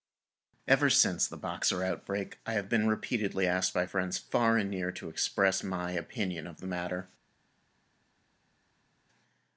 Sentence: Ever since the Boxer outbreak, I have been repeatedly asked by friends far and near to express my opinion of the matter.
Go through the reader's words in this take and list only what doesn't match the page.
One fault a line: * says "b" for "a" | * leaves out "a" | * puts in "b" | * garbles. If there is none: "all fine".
all fine